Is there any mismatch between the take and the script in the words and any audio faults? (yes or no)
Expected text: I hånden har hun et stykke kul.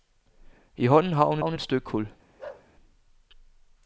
yes